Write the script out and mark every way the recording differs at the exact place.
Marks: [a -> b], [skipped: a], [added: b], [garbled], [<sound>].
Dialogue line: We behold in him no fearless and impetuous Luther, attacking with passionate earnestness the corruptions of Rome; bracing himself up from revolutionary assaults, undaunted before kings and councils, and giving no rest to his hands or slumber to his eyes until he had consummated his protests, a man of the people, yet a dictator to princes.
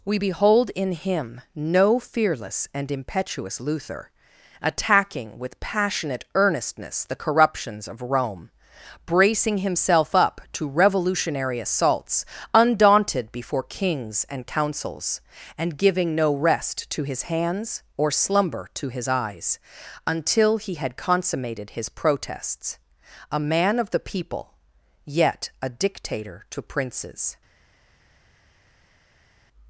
We behold in him no fearless and impetuous Luther, attacking with passionate earnestness the corruptions of Rome; bracing himself up [from -> to] revolutionary assaults, undaunted before kings and councils, and giving no rest to his hands or slumber to his eyes until he had consummated his protests, a man of the people, yet a dictator to princes.